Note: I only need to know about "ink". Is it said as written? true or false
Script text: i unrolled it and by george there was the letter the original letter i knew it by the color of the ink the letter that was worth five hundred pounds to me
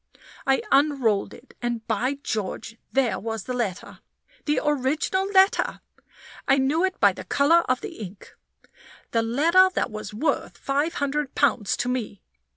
true